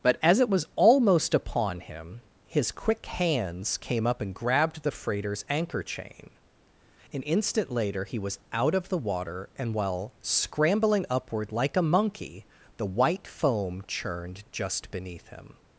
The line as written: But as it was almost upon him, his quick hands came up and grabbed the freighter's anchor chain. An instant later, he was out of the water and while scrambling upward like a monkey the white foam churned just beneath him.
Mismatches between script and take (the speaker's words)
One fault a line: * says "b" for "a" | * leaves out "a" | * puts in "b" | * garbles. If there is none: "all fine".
all fine